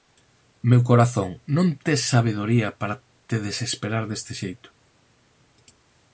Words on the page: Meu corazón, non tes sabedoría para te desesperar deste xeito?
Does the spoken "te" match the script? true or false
true